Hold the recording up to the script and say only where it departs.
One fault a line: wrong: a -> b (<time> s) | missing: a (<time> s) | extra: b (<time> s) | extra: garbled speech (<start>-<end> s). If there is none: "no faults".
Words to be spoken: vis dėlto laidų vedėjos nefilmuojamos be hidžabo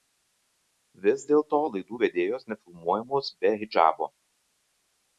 no faults